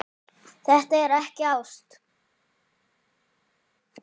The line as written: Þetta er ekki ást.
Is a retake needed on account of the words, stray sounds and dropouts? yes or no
no